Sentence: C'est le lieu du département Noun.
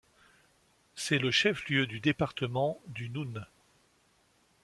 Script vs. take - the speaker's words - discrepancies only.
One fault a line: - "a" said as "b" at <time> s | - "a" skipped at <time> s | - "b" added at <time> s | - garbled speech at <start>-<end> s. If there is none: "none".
- "chef" added at 1.3 s
- "du" added at 2.9 s